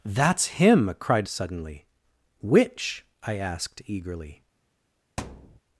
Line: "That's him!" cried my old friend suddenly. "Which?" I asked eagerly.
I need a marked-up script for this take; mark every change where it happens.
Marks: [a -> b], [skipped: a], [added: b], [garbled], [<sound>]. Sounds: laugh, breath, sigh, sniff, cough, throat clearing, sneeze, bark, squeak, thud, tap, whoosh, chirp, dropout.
"That's him!" cried [skipped: my old friend] suddenly. "Which?" I asked eagerly. [thud]